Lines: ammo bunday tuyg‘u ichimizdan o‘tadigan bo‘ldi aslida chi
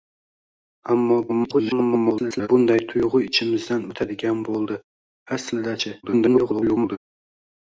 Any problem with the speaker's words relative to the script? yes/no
yes